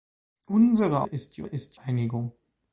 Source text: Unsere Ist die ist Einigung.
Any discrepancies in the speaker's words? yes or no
no